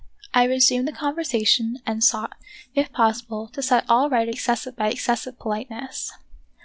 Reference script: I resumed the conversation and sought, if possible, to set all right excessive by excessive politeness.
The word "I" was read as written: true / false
true